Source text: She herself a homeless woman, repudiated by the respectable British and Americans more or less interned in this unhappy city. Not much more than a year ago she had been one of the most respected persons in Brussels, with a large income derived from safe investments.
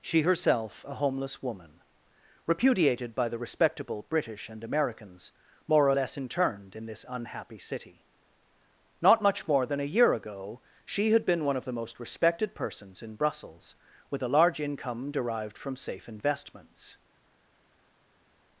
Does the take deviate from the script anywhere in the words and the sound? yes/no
no